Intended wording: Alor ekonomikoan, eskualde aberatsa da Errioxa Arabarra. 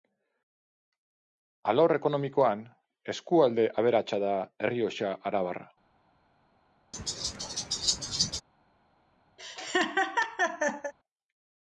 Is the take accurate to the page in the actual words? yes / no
yes